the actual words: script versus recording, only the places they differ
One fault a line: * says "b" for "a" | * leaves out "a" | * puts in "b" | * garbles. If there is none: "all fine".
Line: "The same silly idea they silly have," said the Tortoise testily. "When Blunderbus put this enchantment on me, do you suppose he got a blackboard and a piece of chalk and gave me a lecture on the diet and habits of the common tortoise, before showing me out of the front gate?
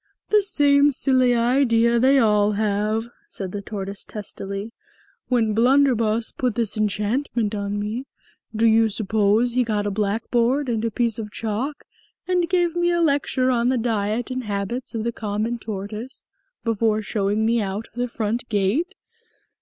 * says "all" for "silly"